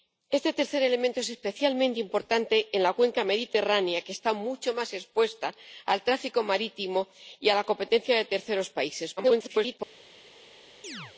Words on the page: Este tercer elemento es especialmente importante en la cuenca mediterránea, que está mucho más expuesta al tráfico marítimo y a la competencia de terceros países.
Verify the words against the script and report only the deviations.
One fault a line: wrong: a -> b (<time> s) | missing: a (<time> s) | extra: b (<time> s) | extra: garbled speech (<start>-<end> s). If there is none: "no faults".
extra: garbled speech (9.2-9.8 s)